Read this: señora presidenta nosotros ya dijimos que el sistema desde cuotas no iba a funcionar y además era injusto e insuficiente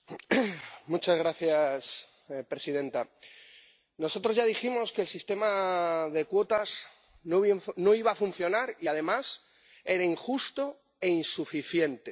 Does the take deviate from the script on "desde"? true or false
true